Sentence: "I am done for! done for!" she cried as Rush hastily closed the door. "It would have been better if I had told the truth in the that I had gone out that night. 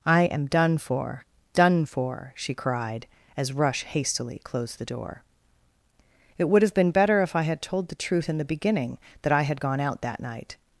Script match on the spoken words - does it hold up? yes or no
no